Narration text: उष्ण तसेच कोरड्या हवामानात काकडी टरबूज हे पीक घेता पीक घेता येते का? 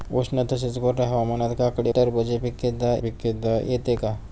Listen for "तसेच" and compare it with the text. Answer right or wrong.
right